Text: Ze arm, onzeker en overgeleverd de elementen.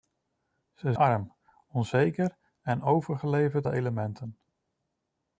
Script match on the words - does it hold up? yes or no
yes